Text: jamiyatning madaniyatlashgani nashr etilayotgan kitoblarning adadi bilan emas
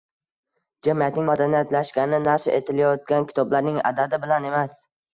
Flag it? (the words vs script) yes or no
no